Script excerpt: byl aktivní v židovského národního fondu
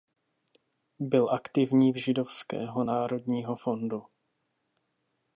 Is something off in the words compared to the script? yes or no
no